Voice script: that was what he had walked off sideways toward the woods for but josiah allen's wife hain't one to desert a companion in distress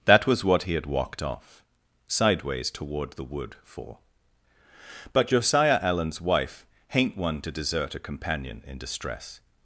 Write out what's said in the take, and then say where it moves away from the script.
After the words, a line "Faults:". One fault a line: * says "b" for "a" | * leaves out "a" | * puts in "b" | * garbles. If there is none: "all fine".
that was what he had walked off sideways toward the wood for but josiah allen's wife hain't one to desert a companion in distress
Faults:
* says "wood" for "woods"